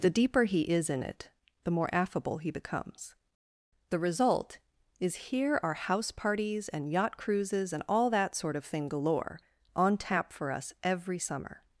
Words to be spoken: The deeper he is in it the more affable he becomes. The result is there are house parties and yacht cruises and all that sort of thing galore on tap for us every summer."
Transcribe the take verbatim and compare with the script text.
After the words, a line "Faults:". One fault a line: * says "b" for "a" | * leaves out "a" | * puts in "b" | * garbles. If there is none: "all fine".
The deeper he is in it the more affable he becomes. The result is here are house parties and yacht cruises and all that sort of thing galore on tap for us every summer."
Faults:
* says "here" for "there"